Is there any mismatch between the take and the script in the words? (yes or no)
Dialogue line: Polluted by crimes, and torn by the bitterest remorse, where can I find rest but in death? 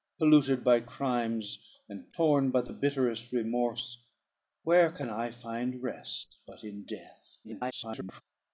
yes